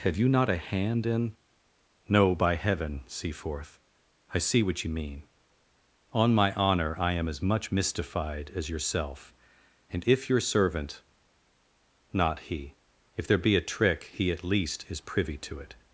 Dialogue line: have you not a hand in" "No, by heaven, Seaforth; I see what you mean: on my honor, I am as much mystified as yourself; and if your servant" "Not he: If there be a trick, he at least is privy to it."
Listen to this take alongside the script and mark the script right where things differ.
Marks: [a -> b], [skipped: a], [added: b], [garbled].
have you not a hand in" "No, by heaven, Seaforth; I see what you mean: on my honor, I am as much mystified as yourself; and if your servant" "Not he: If there be a trick, he at least is privy to it."